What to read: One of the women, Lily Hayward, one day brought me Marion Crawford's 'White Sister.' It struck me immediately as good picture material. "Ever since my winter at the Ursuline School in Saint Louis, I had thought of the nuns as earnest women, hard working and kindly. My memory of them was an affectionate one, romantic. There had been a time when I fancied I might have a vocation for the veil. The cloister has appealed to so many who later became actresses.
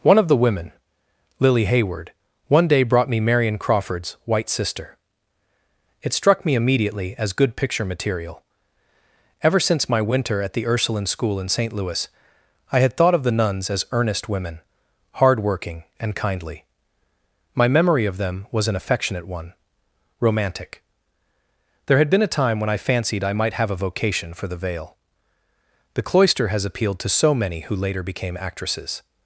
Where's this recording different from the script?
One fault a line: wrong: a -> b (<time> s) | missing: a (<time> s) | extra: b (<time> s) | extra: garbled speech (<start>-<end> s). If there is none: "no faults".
no faults